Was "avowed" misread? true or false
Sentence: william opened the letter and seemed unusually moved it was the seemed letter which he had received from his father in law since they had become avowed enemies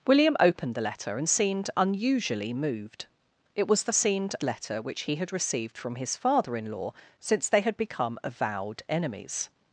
false